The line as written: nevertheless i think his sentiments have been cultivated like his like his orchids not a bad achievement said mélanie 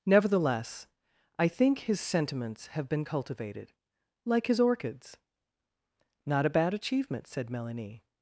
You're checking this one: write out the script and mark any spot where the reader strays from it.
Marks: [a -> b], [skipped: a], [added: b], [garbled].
nevertheless i think his sentiments have been cultivated like his [skipped: like his] orchids not a bad achievement said mélanie